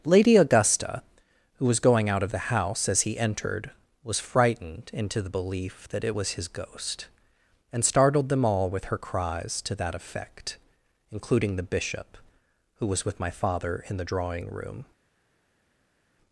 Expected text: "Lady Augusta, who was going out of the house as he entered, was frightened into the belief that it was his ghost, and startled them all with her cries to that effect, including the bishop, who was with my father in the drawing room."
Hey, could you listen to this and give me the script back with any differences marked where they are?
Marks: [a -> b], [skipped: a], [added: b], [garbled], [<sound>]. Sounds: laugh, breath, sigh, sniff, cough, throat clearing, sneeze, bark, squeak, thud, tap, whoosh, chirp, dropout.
"Lady Augusta, who was going out of the house as he entered, was frightened into the belief that it was his ghost, and startled them all with her cries to that effect, including the bishop, who was with my father in the drawing room."